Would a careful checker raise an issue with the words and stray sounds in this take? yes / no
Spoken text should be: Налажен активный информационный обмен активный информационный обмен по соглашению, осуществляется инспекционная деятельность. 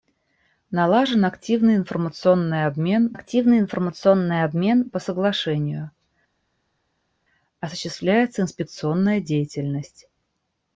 no